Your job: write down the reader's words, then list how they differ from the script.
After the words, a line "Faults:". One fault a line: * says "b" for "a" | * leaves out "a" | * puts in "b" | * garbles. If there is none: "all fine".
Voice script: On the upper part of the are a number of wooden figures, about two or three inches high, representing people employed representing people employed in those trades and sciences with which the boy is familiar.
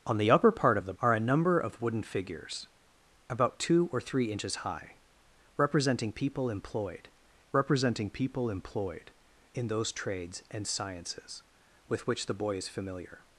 On the upper part of the are a number of wooden figures, about two or three inches high, representing people employed representing people employed in those trades and sciences with which the boy is familiar.
Faults:
all fine